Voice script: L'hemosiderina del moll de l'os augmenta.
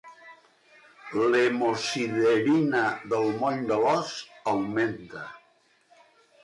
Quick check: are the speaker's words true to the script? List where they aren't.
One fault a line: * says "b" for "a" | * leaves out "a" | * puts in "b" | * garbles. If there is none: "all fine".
all fine